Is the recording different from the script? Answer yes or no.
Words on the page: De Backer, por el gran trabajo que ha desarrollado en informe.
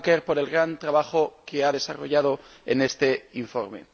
yes